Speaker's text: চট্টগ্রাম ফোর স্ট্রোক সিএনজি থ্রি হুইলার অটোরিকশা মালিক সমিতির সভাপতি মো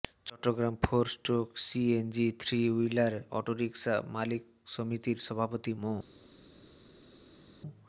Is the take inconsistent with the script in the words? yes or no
no